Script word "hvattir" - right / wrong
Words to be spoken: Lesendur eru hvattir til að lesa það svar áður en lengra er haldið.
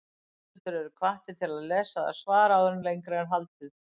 right